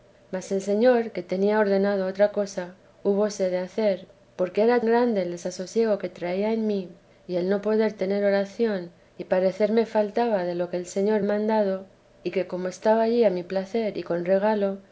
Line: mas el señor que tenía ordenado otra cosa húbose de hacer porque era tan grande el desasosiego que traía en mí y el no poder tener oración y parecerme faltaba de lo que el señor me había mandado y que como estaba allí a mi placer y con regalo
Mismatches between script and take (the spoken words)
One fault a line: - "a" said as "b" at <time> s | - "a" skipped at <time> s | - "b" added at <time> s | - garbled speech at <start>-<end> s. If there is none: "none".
- "tan" skipped at 4.8 s
- "me había" skipped at 11.2 s